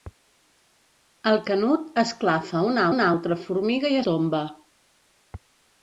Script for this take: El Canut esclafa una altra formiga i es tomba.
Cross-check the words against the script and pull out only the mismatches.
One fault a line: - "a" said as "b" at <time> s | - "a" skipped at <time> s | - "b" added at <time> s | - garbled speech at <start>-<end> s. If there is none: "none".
- "una" added at 2.9 s
- "es" skipped at 4.0 s